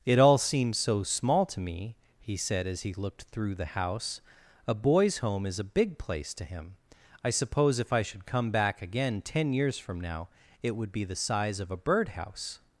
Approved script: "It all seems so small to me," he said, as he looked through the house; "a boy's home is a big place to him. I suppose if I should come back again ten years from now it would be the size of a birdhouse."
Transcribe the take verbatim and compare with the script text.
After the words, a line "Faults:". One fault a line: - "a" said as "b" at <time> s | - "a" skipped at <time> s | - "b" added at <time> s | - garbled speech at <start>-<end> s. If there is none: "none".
"It all seems so small to me," he said, as he looked through the house; "a boy's home is a big place to him. I suppose if I should come back again ten years from now it would be the size of a birdhouse."
Faults:
none